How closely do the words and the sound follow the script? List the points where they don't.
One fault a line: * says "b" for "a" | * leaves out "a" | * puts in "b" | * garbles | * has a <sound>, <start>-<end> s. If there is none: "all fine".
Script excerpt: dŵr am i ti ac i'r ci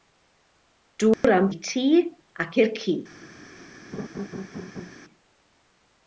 * has a dropout, 1.1-1.2 s
* has a laugh, 3.9-4.9 s